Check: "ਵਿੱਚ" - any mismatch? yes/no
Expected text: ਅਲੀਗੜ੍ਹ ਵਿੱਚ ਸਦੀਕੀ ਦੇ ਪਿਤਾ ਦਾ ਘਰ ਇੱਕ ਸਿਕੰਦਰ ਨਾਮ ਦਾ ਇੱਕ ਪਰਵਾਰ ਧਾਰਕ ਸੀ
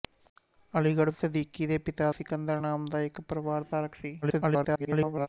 yes